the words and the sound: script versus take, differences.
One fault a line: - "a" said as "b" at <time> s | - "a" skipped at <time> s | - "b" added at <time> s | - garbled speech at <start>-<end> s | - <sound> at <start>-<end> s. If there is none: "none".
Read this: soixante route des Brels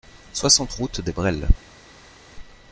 none